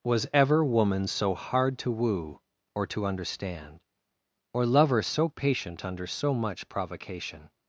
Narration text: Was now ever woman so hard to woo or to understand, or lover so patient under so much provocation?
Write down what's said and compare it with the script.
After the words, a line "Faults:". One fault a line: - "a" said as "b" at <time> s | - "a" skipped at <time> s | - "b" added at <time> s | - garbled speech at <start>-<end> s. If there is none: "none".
Was ever woman so hard to woo or to understand, or lover so patient under so much provocation?
Faults:
- "now" skipped at 0.2 s